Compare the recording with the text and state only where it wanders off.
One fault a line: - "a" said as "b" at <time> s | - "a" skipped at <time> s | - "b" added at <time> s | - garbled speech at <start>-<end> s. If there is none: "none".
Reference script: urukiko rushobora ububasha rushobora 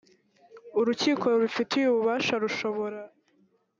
- "rushobora" said as "rubifitiye" at 1.3 s